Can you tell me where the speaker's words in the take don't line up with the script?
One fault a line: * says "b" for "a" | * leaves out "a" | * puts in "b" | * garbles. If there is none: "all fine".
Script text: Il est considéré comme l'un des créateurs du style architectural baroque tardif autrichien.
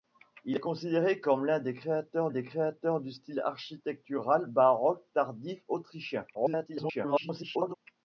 * puts in "des créateurs"
* garbles